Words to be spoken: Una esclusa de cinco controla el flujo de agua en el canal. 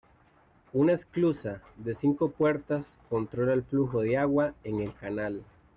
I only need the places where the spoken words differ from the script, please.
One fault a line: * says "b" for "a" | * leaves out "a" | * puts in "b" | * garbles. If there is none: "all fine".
* puts in "puertas"